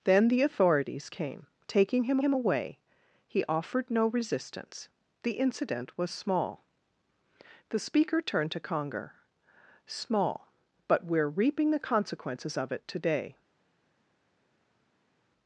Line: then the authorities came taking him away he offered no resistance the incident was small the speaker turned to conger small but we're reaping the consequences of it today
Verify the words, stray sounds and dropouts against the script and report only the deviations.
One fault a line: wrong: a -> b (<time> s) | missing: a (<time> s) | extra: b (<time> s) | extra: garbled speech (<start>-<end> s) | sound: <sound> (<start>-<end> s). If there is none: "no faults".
extra: him (2.2 s)